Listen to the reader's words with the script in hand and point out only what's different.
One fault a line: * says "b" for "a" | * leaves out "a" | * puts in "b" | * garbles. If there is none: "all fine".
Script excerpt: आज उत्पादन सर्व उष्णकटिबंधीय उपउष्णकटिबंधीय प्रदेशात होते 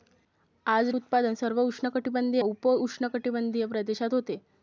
all fine